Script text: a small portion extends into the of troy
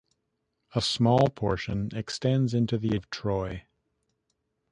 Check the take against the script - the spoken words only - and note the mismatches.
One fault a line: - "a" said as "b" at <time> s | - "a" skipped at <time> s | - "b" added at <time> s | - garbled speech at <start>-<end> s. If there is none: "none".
none